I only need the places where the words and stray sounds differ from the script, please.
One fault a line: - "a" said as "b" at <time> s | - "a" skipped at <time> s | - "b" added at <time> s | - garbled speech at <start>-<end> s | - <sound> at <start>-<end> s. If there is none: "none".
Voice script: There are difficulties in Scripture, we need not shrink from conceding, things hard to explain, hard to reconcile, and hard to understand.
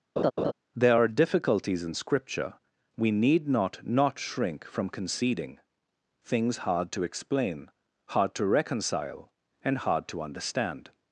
- laugh at 0.2-0.5 s
- "not" added at 3.8 s